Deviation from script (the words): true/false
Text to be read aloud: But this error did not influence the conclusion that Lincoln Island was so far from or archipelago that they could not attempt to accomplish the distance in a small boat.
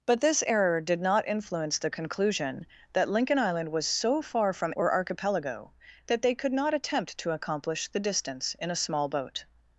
false